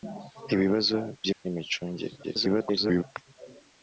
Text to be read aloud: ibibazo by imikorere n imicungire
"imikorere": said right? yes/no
no